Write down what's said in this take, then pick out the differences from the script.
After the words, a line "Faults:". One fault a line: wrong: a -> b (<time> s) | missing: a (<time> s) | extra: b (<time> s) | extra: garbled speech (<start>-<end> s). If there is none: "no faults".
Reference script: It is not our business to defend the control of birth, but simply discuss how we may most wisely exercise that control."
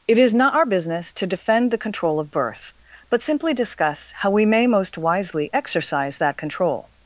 It is not our business to defend the control of birth, but simply discuss how we may most wisely exercise that control."
Faults:
no faults